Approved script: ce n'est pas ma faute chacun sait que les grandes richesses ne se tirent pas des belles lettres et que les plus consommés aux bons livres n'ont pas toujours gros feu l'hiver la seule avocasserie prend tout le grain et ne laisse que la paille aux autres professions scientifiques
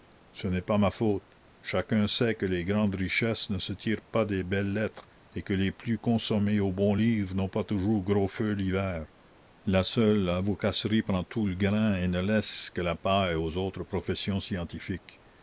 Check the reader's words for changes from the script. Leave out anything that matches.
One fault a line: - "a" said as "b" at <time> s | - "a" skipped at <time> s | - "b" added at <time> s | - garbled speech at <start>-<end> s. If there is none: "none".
none